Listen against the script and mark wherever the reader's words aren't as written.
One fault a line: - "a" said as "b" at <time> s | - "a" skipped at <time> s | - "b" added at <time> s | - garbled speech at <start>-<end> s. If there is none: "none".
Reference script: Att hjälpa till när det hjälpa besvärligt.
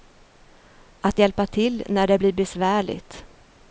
- "hjälpa" said as "blir" at 2.1 s